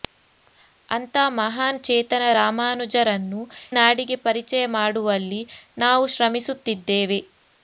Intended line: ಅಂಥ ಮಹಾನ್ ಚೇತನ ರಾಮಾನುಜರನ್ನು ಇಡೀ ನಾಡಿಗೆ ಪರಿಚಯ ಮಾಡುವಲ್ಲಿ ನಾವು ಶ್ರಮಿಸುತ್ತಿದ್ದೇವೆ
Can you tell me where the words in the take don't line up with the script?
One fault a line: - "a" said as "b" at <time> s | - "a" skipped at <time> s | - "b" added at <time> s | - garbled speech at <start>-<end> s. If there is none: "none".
- "ಇಡೀ" skipped at 3.4 s